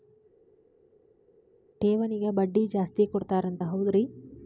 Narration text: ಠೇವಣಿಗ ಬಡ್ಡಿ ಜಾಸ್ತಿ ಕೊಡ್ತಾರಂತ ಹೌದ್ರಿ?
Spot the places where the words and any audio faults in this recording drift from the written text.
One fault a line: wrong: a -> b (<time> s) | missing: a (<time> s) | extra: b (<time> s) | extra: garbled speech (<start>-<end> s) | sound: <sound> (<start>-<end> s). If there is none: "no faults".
no faults